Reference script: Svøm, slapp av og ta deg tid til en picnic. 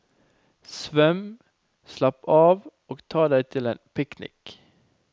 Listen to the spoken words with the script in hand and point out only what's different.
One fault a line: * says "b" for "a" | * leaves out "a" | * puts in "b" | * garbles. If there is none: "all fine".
* leaves out "tid"